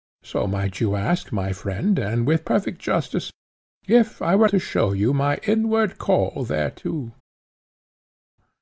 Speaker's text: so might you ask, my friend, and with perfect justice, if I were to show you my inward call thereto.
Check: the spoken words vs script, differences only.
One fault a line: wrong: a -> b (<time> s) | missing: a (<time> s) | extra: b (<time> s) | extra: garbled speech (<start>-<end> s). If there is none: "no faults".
no faults